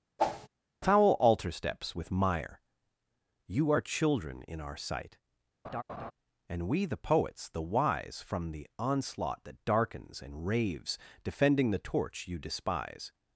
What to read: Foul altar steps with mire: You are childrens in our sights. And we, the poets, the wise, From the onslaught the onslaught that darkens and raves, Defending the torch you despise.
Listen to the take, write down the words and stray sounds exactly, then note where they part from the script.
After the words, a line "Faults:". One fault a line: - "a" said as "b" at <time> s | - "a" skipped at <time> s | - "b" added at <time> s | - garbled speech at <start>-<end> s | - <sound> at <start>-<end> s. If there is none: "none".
Foul altar steps with mire: You are children in our sight. And we, the poets, the wise, From the onslaught that darkens and raves, Defending the torch you despise.
Faults:
- whoosh at 0.2-0.5 s
- "childrens" said as "children" at 3.8 s
- "sights" said as "sight" at 4.8 s
- laugh at 5.6-6.1 s
- "the onslaught" skipped at 9.4 s